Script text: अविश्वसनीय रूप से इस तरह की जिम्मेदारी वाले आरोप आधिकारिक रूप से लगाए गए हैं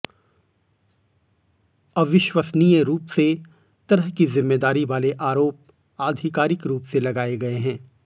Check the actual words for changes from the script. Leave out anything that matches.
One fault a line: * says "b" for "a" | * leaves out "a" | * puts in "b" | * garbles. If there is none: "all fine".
* leaves out "इस"